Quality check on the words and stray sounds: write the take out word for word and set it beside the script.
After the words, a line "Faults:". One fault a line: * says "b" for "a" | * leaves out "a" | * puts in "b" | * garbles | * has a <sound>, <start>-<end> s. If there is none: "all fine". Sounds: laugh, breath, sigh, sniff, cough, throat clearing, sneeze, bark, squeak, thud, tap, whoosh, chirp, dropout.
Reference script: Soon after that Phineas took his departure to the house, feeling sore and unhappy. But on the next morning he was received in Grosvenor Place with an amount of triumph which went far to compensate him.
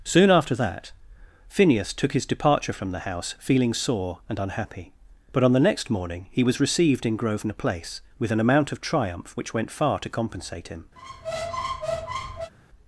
Soon after that Phineas took his departure from the house, feeling sore and unhappy. But on the next morning he was received in Grosvenor Place with an amount of triumph which went far to compensate him.
Faults:
* says "from" for "to"
* has a squeak, 11.0-12.5 s